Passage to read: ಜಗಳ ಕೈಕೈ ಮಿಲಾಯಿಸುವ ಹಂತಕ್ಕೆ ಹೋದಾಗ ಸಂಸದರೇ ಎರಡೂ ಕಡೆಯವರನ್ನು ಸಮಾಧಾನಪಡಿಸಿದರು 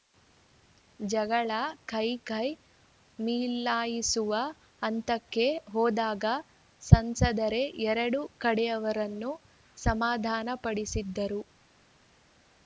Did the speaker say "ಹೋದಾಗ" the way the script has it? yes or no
yes